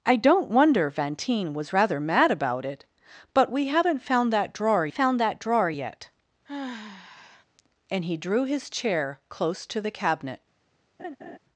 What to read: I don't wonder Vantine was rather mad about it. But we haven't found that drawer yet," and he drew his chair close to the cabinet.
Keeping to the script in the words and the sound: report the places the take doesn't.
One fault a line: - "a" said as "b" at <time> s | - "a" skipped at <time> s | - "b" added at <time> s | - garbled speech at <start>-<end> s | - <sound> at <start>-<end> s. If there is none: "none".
- "found that drawer" added at 4.9 s
- sigh at 6.4-7.4 s
- laugh at 11.0-11.4 s